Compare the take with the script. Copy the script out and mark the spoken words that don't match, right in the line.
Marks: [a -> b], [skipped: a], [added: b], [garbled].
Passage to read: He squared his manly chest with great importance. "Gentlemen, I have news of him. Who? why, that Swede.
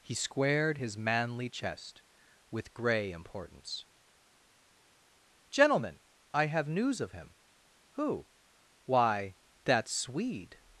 He squared his manly chest with [great -> grey] importance. "Gentlemen, I have news of him. Who? why, that Swede.